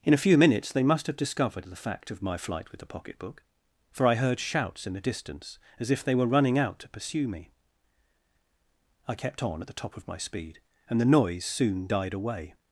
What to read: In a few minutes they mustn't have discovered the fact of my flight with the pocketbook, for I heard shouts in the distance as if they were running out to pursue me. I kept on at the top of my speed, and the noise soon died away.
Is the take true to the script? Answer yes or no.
no